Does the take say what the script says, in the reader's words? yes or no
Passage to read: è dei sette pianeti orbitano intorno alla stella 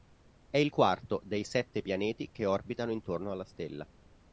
no